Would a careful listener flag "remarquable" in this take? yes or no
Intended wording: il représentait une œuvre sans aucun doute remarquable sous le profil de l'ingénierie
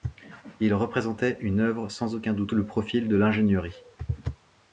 yes